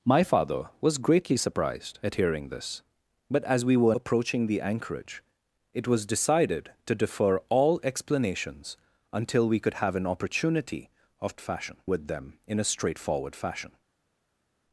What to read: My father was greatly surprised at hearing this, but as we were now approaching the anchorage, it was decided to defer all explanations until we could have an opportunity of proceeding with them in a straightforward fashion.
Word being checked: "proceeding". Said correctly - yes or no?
no